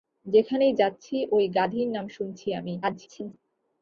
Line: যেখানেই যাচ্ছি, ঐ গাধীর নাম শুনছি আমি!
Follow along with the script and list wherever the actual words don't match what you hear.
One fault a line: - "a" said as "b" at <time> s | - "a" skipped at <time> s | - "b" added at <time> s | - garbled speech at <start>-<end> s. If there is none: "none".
- garbled speech at 2.8-3.3 s